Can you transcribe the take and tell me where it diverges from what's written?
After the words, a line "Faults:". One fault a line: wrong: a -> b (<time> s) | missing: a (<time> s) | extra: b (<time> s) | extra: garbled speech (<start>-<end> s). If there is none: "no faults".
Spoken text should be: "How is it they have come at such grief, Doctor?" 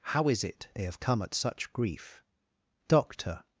"How is it they have come at such grief, Doctor?"
Faults:
no faults